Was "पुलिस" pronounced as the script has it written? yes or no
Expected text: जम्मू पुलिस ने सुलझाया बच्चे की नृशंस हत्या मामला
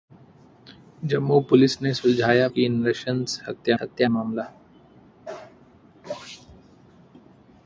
yes